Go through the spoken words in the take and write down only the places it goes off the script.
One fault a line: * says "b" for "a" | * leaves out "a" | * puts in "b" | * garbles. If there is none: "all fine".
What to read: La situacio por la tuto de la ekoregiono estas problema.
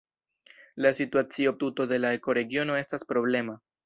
* leaves out "por la"